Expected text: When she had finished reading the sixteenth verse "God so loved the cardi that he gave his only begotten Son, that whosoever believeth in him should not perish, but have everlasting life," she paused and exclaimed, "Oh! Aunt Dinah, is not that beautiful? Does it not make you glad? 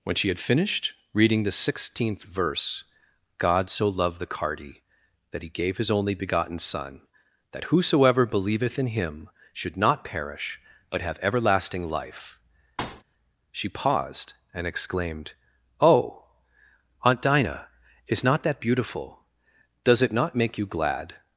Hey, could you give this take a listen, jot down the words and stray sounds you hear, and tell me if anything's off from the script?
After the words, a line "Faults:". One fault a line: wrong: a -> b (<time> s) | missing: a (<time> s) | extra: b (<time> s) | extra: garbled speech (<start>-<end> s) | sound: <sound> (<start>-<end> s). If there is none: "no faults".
When she had finished reading the sixteenth verse "God so loved the cardi that he gave his only begotten Son, that whosoever believeth in him should not perish, but have everlasting life," she paused and exclaimed, "Oh! Aunt Dinah, is not that beautiful? Does it not make you glad?
Faults:
sound: thud (12.8-13.0 s)